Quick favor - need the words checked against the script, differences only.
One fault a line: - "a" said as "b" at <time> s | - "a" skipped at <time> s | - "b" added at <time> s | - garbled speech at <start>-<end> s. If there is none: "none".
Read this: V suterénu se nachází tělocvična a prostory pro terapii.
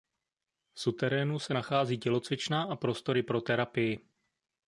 none